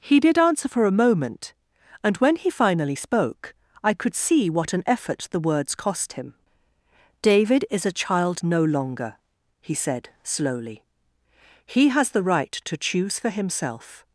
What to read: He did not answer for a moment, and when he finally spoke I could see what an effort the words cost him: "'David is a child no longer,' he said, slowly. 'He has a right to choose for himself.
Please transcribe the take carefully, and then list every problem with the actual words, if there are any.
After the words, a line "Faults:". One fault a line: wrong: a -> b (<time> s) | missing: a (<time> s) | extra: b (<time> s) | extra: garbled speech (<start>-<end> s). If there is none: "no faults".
He did answer for a moment, and when he finally spoke I could see what an effort the words cost him: "'David is a child no longer,' he said, slowly. 'He has the right to choose for himself.
Faults:
missing: not (0.4 s)
wrong: a -> the (12.1 s)